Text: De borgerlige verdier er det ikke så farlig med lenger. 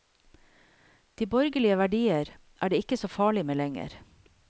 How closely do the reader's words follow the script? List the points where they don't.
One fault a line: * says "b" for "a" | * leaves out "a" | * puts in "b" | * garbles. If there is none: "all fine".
all fine